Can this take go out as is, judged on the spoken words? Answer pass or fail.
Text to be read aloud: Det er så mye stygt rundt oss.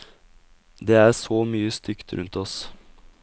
pass